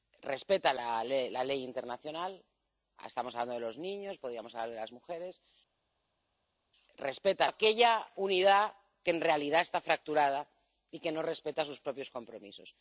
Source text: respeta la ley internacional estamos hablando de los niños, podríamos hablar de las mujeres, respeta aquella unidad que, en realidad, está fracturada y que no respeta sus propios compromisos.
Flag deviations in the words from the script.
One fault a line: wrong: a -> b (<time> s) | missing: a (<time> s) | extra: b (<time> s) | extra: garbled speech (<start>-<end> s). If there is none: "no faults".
no faults